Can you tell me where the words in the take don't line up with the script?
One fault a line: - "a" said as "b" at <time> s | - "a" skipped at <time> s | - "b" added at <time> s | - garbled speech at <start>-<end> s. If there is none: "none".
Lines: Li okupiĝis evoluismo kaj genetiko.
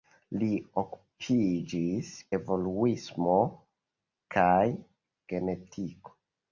none